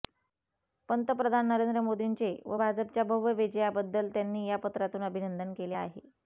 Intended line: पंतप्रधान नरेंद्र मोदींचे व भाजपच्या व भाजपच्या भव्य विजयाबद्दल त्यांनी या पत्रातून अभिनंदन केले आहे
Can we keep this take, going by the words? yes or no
no